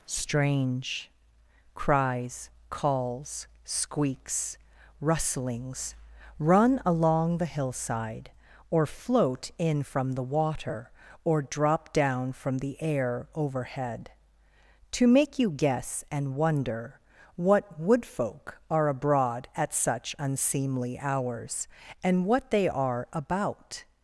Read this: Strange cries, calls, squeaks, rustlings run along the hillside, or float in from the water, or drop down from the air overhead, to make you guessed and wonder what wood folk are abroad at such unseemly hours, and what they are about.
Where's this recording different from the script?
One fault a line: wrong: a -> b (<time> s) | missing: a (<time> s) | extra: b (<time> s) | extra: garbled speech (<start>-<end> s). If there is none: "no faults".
wrong: guessed -> guess (15.5 s)